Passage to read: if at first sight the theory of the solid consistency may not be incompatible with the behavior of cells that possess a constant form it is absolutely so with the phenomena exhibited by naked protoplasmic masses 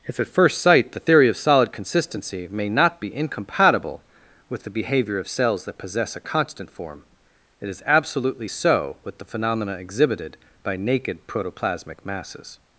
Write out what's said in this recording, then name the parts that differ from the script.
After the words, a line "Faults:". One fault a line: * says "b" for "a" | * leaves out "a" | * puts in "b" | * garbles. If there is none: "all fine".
if at first sight the theory of solid consistency may not be incompatible with the behavior of cells that possess a constant form it is absolutely so with the phenomena exhibited by naked protoplasmic masses
Faults:
* leaves out "the"